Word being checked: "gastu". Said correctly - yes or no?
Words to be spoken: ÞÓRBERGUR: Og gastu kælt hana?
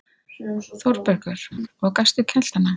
yes